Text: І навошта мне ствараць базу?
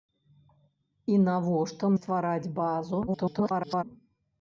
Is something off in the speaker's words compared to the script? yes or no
yes